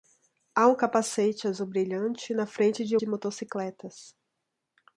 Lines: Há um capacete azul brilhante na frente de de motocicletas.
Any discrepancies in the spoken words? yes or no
no